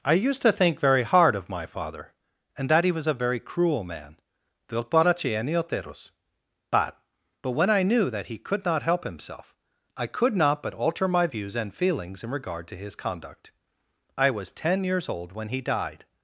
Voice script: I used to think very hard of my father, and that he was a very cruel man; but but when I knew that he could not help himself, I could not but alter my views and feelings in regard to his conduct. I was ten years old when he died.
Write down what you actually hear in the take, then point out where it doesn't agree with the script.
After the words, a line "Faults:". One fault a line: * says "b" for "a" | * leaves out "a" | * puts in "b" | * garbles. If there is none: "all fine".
I used to think very hard of my father, and that he was a very cruel man; but but when I knew that he could not help himself, I could not but alter my views and feelings in regard to his conduct. I was ten years old when he died.
Faults:
all fine